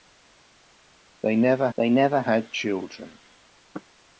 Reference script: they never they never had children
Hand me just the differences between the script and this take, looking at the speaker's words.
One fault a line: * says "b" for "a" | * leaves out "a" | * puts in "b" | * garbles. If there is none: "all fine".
all fine